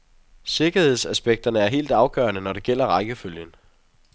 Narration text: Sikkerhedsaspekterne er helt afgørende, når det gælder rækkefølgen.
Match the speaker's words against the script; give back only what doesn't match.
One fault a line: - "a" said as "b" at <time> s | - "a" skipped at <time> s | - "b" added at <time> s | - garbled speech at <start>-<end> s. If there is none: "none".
none